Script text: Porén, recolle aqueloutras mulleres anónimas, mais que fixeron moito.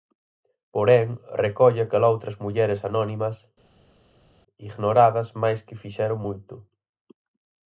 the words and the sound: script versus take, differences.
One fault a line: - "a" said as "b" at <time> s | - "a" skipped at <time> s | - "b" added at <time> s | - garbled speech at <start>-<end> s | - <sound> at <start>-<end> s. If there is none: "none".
- "ignoradas" added at 4.7 s